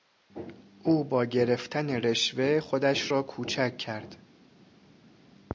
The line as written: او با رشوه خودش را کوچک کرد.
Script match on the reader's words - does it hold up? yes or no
no